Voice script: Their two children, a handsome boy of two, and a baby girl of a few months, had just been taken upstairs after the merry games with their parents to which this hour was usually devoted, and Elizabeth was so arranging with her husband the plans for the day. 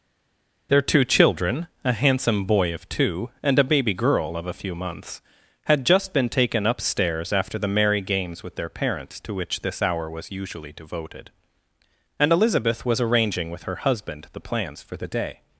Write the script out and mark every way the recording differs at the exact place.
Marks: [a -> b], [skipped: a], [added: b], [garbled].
Their two children, a handsome boy of two, and a baby girl of a few months, had just been taken upstairs after the merry games with their parents to which this hour was usually devoted, and Elizabeth was [skipped: so] arranging with her husband the plans for the day.